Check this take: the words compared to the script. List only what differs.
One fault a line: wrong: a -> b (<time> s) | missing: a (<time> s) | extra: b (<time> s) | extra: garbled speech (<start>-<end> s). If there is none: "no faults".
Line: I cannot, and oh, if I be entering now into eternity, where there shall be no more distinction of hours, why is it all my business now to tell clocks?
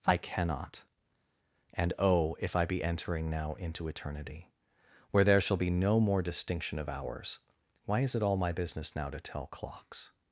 no faults